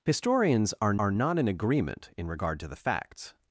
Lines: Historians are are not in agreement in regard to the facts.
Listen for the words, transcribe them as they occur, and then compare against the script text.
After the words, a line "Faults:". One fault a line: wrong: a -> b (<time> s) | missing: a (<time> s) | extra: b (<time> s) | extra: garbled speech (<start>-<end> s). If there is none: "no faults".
Historians are are not in agreement in regard to the facts.
Faults:
no faults